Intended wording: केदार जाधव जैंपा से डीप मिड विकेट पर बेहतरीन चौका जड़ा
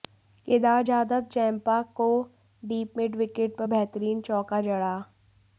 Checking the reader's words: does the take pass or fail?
fail